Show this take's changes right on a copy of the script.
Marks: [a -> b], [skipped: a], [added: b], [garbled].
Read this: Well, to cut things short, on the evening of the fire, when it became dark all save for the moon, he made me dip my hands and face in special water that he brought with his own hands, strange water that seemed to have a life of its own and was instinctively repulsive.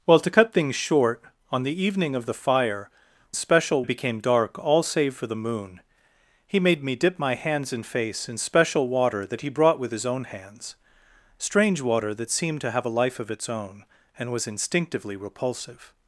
Well, to cut things short, on the evening of the fire, [when -> special] it became dark all save for the moon, he made me dip my hands and face in special water that he brought with his own hands, strange water that seemed to have a life of its own and was instinctively repulsive.